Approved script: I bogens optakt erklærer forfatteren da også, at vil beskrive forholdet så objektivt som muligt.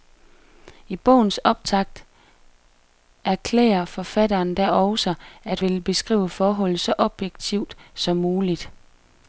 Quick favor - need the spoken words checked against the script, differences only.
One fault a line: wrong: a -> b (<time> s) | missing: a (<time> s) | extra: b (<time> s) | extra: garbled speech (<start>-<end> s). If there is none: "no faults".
no faults